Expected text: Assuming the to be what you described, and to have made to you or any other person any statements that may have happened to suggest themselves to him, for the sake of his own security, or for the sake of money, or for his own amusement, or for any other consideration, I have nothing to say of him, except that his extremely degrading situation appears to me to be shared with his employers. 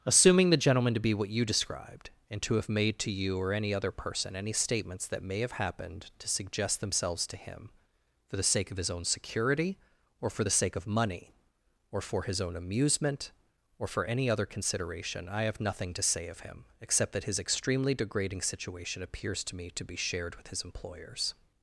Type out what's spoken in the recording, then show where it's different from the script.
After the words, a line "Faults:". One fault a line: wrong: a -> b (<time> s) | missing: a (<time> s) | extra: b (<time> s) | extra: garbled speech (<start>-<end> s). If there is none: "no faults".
Assuming the gentleman to be what you described, and to have made to you or any other person any statements that may have happened to suggest themselves to him, for the sake of his own security, or for the sake of money, or for his own amusement, or for any other consideration, I have nothing to say of him, except that his extremely degrading situation appears to me to be shared with his employers.
Faults:
extra: gentleman (0.6 s)